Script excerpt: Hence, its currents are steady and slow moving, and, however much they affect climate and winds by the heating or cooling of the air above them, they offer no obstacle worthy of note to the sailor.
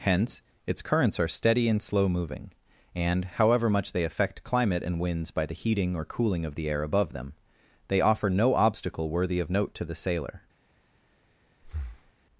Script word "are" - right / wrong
right